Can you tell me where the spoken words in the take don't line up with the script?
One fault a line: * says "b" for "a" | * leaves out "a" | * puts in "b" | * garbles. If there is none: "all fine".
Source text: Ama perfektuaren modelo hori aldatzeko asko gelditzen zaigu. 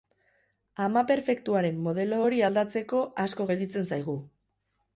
all fine